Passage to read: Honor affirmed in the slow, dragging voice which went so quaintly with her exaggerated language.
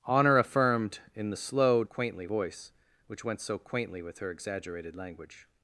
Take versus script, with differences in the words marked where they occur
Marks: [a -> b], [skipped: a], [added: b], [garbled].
Honor affirmed in the slow, [dragging -> quaintly] voice which went so quaintly with her exaggerated language.